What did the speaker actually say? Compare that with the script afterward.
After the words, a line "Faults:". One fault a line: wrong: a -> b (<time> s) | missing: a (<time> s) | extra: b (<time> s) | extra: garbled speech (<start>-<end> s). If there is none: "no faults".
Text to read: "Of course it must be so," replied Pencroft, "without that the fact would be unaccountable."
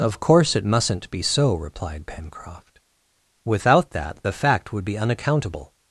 "Of course it mustn't be so," replied Pencroft, "without that the fact would be unaccountable."
Faults:
wrong: must -> mustn't (0.7 s)